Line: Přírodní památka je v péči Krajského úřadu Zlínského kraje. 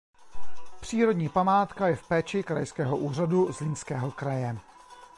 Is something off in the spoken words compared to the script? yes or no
no